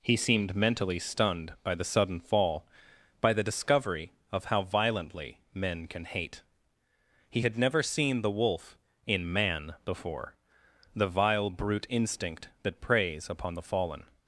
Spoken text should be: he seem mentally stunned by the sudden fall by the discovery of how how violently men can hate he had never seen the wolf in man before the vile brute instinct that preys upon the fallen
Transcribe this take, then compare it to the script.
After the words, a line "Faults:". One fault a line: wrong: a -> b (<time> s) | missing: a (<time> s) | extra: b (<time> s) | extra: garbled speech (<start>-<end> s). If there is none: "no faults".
he seemed mentally stunned by the sudden fall by the discovery of how violently men can hate he had never seen the wolf in man before the vile brute instinct that preys upon the fallen
Faults:
wrong: seem -> seemed (0.1 s)
missing: how (4.6 s)